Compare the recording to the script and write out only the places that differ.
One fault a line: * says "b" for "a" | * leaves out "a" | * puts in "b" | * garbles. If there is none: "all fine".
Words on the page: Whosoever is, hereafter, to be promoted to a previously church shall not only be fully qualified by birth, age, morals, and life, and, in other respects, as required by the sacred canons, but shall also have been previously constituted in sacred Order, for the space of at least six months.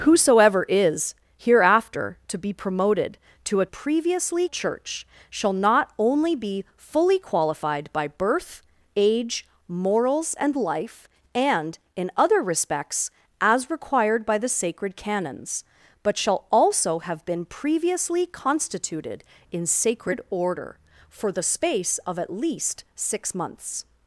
all fine